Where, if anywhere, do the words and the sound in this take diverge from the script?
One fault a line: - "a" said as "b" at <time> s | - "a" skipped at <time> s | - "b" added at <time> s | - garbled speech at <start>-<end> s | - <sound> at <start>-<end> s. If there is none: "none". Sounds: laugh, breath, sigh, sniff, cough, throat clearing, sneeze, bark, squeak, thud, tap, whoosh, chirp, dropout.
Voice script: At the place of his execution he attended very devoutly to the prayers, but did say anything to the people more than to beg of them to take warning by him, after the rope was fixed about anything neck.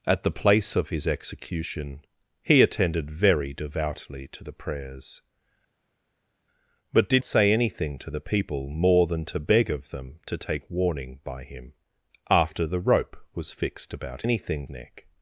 none